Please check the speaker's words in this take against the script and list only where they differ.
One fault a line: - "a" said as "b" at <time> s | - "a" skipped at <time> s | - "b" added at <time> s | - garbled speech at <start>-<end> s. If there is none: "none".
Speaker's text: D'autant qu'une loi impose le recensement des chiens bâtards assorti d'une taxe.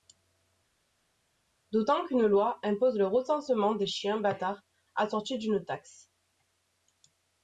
none